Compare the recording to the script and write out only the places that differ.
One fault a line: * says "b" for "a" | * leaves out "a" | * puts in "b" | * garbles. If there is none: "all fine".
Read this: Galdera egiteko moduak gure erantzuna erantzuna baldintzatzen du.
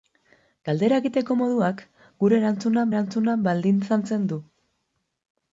all fine